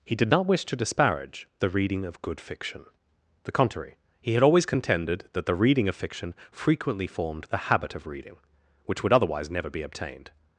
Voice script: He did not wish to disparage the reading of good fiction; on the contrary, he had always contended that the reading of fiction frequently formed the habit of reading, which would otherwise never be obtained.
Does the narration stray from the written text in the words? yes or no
yes